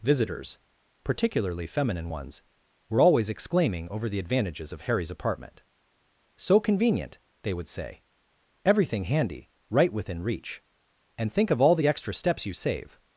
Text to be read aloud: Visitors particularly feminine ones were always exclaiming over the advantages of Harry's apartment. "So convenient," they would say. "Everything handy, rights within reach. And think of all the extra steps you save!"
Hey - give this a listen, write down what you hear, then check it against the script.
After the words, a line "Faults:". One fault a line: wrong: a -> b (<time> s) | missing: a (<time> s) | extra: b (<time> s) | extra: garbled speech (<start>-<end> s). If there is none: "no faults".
Visitors particularly feminine ones were always exclaiming over the advantages of Harry's apartment. "So convenient," they would say. "Everything handy, right within reach. And think of all the extra steps you save!"
Faults:
wrong: rights -> right (9.7 s)